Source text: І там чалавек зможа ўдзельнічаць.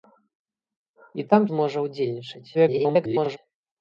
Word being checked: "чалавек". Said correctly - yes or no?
no